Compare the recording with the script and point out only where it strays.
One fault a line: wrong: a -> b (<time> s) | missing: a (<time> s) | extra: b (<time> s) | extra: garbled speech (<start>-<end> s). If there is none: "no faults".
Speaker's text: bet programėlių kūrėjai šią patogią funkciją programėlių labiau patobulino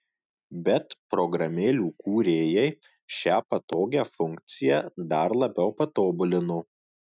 wrong: programėlių -> dar (5.2 s)